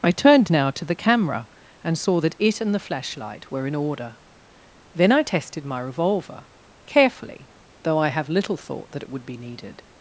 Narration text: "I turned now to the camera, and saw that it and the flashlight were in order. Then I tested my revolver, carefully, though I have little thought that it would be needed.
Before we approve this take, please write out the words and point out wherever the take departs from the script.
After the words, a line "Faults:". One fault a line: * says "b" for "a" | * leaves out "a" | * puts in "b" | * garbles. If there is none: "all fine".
"I turned now to the camera, and saw that it and the flashlight were in order. Then I tested my revolver, carefully, though I have little thought that it would be needed.
Faults:
all fine